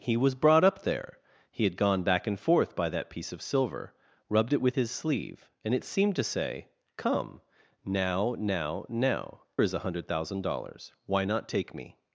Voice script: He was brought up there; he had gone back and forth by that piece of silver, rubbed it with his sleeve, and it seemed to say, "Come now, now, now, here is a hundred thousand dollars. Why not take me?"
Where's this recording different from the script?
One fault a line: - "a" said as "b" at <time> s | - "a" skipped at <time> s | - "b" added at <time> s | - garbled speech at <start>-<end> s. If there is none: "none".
- "here" skipped at 9.4 s